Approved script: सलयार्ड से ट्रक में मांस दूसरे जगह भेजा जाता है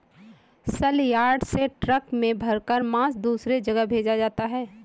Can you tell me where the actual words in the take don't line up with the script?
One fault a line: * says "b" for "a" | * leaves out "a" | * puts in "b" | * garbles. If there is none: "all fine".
* puts in "भरकर"